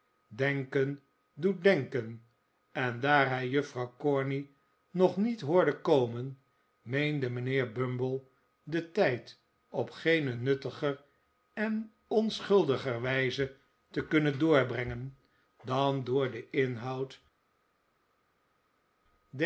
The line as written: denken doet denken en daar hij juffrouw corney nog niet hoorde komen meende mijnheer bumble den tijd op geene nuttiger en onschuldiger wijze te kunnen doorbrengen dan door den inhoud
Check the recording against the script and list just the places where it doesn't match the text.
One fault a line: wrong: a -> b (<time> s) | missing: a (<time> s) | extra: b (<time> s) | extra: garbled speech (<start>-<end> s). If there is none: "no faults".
no faults